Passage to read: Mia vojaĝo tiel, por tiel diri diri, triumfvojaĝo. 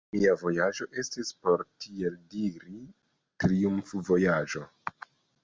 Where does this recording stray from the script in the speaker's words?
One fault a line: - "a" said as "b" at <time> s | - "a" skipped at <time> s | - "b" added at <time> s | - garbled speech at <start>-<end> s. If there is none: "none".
- "tiel" said as "estis" at 1.0 s
- "diri" skipped at 2.8 s